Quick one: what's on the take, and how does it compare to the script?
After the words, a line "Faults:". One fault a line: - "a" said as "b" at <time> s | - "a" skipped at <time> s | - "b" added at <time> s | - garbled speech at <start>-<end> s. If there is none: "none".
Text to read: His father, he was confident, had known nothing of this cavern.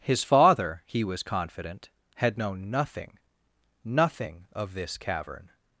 His father, he was confident, had known nothing nothing of this cavern.
Faults:
- "nothing" added at 3.8 s